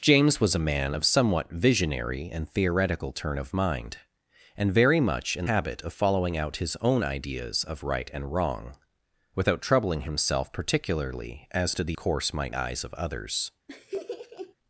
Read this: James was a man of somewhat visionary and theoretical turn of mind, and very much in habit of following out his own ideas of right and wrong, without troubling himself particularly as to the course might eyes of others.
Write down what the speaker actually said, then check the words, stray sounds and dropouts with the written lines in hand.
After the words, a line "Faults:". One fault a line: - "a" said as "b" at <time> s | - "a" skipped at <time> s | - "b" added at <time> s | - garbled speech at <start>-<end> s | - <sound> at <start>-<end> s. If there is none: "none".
James was a man of somewhat visionary and theoretical turn of mind, and very much in habit of following out his own ideas of right and wrong, without troubling himself particularly as to the course might eyes of others.
Faults:
- laugh at 13.7-14.5 s